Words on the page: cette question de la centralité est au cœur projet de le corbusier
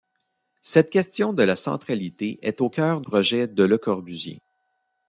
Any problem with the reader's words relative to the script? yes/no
no